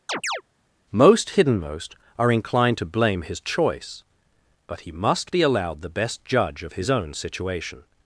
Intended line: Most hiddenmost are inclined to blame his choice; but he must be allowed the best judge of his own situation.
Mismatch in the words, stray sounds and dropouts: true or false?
true